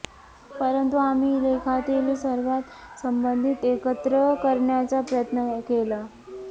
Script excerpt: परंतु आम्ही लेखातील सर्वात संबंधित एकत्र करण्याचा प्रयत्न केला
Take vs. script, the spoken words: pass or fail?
pass